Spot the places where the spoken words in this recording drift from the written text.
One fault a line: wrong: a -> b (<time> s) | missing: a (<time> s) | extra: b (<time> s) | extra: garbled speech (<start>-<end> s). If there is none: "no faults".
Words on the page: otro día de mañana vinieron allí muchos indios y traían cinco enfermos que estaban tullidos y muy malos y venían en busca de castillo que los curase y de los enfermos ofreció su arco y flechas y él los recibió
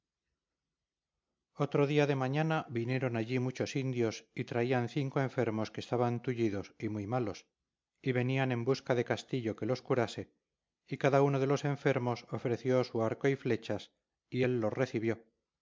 extra: cada uno (11.0 s)